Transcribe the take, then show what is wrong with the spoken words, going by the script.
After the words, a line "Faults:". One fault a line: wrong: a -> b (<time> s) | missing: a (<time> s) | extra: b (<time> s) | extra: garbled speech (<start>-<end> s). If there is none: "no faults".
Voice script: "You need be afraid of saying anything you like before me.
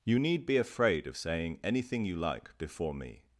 "You need be afraid of saying anything you like before me.
Faults:
no faults